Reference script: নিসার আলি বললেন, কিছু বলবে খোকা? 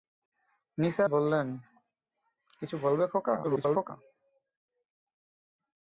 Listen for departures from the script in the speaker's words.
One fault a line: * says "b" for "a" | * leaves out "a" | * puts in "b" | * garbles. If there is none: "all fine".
* leaves out "আলি"
* garbles